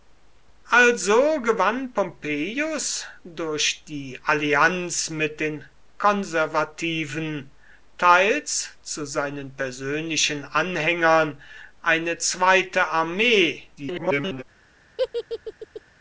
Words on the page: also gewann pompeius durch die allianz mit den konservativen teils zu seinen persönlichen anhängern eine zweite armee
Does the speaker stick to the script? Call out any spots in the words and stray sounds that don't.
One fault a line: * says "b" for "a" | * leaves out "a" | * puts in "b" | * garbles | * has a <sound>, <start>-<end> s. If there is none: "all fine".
* garbles
* has a laugh, 15.0-15.8 s